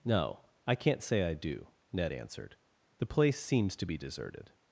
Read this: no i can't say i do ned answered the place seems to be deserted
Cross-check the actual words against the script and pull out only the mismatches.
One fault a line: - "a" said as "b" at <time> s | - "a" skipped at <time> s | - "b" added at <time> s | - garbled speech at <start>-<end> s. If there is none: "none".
none